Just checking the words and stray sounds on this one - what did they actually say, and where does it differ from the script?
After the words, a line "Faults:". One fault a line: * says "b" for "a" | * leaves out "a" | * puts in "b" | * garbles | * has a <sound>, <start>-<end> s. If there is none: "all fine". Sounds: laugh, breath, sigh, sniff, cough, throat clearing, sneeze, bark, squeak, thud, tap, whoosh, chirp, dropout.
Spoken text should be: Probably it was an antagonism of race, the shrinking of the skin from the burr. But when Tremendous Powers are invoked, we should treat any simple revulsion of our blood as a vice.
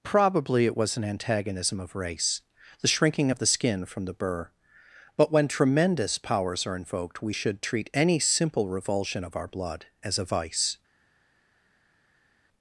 Probably it was an antagonism of race, the shrinking of the skin from the burr. But when Tremendous Powers are invoked, we should treat any simple revulsion of our blood as a vice.
Faults:
all fine